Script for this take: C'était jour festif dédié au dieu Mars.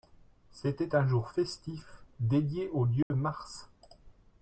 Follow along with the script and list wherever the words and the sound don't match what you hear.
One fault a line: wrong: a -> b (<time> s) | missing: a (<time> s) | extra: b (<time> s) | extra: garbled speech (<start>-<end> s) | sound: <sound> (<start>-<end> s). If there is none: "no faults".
extra: un (0.9 s)
sound: dropout (3.0-3.1 s)